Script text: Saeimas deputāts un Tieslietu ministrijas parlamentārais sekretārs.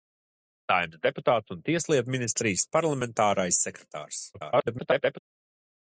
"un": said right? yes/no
yes